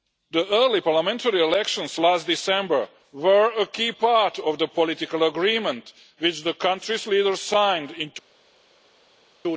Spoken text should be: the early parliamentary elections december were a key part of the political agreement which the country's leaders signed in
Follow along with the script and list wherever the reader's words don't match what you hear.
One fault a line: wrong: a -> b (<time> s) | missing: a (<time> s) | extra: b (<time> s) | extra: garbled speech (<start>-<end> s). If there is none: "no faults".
extra: last (2.0 s)